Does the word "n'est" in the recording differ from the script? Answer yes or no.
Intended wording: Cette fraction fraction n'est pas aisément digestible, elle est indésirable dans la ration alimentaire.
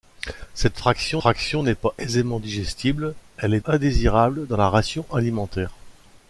no